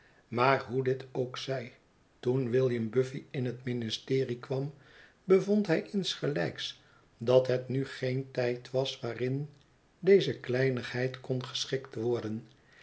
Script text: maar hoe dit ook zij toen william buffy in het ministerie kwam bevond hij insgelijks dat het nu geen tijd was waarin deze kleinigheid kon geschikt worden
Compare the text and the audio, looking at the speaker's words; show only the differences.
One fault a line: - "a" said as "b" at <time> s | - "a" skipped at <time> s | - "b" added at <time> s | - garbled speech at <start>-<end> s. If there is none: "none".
none